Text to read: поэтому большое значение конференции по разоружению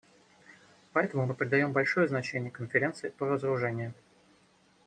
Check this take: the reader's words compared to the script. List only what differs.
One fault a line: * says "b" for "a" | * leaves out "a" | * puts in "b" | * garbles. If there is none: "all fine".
* puts in "мы придаем"